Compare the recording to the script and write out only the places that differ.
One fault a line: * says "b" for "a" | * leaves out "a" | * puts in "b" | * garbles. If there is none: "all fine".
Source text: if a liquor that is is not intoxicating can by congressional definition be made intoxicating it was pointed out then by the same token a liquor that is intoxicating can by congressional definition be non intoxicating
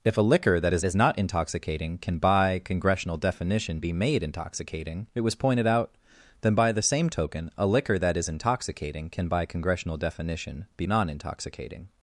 all fine